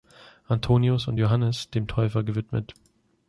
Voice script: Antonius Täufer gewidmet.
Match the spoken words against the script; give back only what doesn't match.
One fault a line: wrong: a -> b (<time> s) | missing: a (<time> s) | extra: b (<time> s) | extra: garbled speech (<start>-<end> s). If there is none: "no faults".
extra: und Johannes dem (1.1 s)